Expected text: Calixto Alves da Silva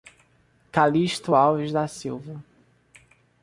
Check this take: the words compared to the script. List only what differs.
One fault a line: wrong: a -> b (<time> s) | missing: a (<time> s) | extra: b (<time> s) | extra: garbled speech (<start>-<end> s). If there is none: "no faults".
no faults